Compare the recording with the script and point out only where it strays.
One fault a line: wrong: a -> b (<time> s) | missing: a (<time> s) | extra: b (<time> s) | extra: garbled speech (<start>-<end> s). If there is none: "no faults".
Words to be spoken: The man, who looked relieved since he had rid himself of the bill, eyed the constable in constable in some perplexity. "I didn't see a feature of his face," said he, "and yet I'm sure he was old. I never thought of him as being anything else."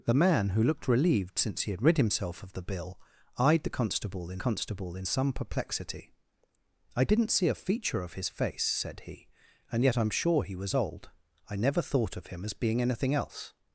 no faults